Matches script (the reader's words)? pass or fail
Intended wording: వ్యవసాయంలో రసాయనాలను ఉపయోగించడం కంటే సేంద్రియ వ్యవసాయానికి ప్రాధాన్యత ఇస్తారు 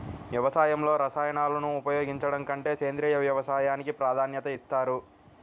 pass